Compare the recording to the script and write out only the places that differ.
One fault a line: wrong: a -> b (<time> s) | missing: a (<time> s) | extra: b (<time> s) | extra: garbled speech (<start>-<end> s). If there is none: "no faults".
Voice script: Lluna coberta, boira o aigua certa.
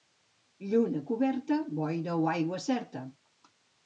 no faults